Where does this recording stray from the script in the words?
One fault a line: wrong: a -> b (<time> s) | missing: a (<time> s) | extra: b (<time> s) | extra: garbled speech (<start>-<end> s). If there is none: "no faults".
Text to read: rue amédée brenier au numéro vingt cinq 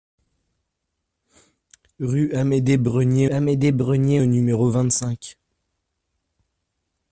extra: amédée brenier (3.3 s)